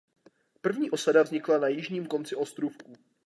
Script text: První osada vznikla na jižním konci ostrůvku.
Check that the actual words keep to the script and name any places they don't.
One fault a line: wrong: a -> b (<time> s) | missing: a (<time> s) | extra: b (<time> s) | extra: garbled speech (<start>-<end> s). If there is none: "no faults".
no faults